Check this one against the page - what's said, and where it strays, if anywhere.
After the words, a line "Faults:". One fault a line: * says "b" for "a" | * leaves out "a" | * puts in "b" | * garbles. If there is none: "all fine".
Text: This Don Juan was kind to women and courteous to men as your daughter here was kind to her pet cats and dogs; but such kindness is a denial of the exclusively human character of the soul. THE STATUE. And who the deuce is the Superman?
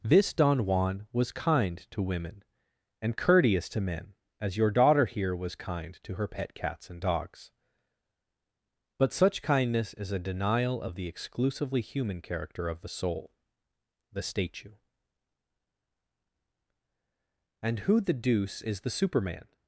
This Don Juan was kind to women and courteous to men as your daughter here was kind to her pet cats and dogs; but such kindness is a denial of the exclusively human character of the soul. THE STATUE. And who the deuce is the Superman?
Faults:
all fine